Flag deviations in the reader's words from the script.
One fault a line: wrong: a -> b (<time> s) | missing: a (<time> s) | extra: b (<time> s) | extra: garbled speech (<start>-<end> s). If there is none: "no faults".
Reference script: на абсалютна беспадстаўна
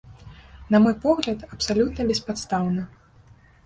extra: мой погляд (0.8 s)